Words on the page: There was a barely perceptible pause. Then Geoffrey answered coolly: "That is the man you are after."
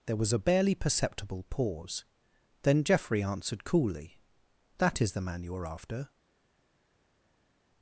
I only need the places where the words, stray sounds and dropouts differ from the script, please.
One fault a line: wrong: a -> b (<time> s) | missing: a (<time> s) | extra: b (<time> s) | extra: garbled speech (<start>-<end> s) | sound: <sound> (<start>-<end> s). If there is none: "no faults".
no faults